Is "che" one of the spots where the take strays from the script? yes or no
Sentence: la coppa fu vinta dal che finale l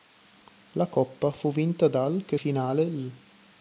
no